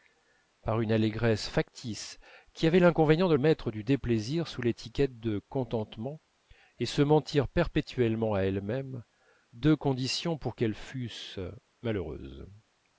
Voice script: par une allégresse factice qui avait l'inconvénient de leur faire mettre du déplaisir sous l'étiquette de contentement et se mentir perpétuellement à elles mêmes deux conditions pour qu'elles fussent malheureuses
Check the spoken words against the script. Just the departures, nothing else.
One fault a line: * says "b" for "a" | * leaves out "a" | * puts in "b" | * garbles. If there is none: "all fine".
* leaves out "leur faire"